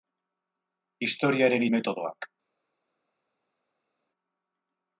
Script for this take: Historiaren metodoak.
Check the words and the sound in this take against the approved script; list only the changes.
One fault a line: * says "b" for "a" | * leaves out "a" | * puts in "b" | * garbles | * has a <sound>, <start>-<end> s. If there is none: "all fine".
all fine